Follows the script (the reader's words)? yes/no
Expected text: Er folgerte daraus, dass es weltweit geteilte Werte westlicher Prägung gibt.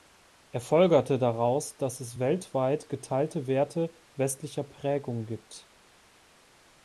yes